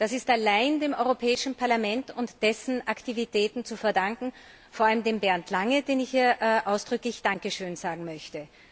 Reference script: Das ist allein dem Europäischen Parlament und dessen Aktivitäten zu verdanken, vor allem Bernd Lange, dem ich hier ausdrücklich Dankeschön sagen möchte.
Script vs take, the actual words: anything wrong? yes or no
no